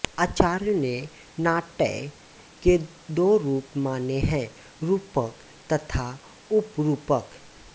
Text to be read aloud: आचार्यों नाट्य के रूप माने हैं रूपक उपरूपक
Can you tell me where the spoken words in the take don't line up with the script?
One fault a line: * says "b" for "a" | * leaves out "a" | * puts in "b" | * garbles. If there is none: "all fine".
* puts in "ने"
* puts in "दो"
* puts in "तथा"